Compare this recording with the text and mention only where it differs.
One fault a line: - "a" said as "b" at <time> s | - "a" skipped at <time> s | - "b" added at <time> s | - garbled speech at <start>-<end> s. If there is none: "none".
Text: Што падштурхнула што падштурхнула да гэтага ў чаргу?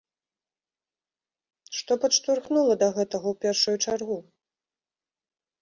- "што падштурхнула" skipped at 2.7 s
- "першую" added at 3.5 s